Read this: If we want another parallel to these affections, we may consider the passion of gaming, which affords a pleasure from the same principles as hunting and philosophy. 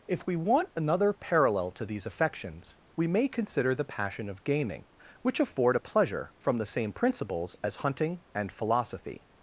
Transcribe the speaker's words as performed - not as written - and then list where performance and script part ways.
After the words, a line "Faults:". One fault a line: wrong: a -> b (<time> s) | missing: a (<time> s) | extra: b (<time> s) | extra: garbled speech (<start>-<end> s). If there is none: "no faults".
If we want another parallel to these affections, we may consider the passion of gaming, which afford a pleasure from the same principles as hunting and philosophy.
Faults:
wrong: affords -> afford (5.4 s)